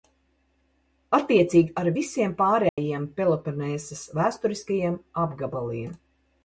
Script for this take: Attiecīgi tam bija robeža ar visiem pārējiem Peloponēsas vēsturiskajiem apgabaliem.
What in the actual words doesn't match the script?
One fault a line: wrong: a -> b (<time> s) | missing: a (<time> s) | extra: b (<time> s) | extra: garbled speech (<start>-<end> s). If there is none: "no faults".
missing: tam bija robeža (1.8 s)